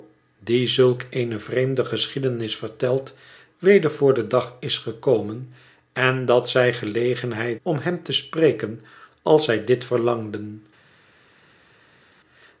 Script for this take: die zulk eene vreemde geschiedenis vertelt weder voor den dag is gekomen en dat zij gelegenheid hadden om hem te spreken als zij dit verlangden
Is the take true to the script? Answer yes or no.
no